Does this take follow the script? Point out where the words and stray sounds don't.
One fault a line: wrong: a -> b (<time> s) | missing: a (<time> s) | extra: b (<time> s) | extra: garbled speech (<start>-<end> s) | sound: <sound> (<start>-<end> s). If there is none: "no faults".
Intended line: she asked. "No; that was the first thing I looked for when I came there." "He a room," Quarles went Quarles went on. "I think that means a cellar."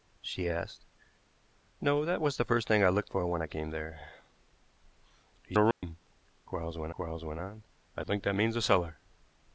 sound: dropout (5.7-5.8 s)